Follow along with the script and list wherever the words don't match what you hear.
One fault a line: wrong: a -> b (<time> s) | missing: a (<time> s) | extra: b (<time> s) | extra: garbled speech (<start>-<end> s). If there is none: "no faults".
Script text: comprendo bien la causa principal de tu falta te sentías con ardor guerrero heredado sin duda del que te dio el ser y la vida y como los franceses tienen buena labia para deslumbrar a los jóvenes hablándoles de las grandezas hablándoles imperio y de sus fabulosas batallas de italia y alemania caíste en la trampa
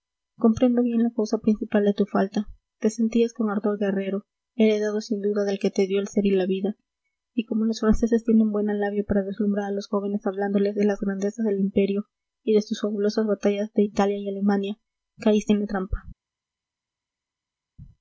wrong: hablándoles -> del (11.4 s)